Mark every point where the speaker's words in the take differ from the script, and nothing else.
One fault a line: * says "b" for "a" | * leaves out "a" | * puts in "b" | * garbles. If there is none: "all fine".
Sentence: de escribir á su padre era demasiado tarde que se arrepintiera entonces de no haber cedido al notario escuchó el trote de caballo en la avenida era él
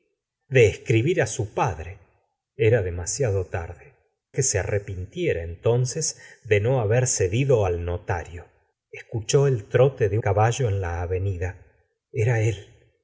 all fine